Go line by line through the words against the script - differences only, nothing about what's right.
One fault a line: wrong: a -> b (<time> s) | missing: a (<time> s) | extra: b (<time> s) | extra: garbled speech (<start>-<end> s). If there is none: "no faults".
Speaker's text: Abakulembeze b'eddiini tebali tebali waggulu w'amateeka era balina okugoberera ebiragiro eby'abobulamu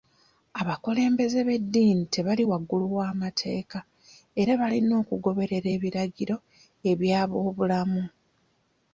missing: tebali (2.4 s)